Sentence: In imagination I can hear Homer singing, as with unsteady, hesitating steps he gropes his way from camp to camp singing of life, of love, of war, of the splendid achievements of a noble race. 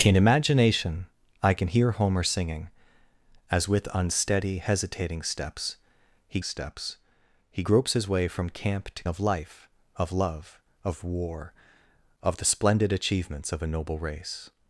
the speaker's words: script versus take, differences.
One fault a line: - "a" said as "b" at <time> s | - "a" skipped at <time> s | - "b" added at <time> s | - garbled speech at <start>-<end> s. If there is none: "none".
- "steps he" added at 6.4 s
- "camp singing" skipped at 9.1 s